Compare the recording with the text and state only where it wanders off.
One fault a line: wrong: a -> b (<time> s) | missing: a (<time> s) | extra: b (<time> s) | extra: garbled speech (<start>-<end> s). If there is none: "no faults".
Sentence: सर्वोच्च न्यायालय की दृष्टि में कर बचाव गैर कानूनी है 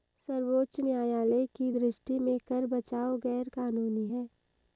no faults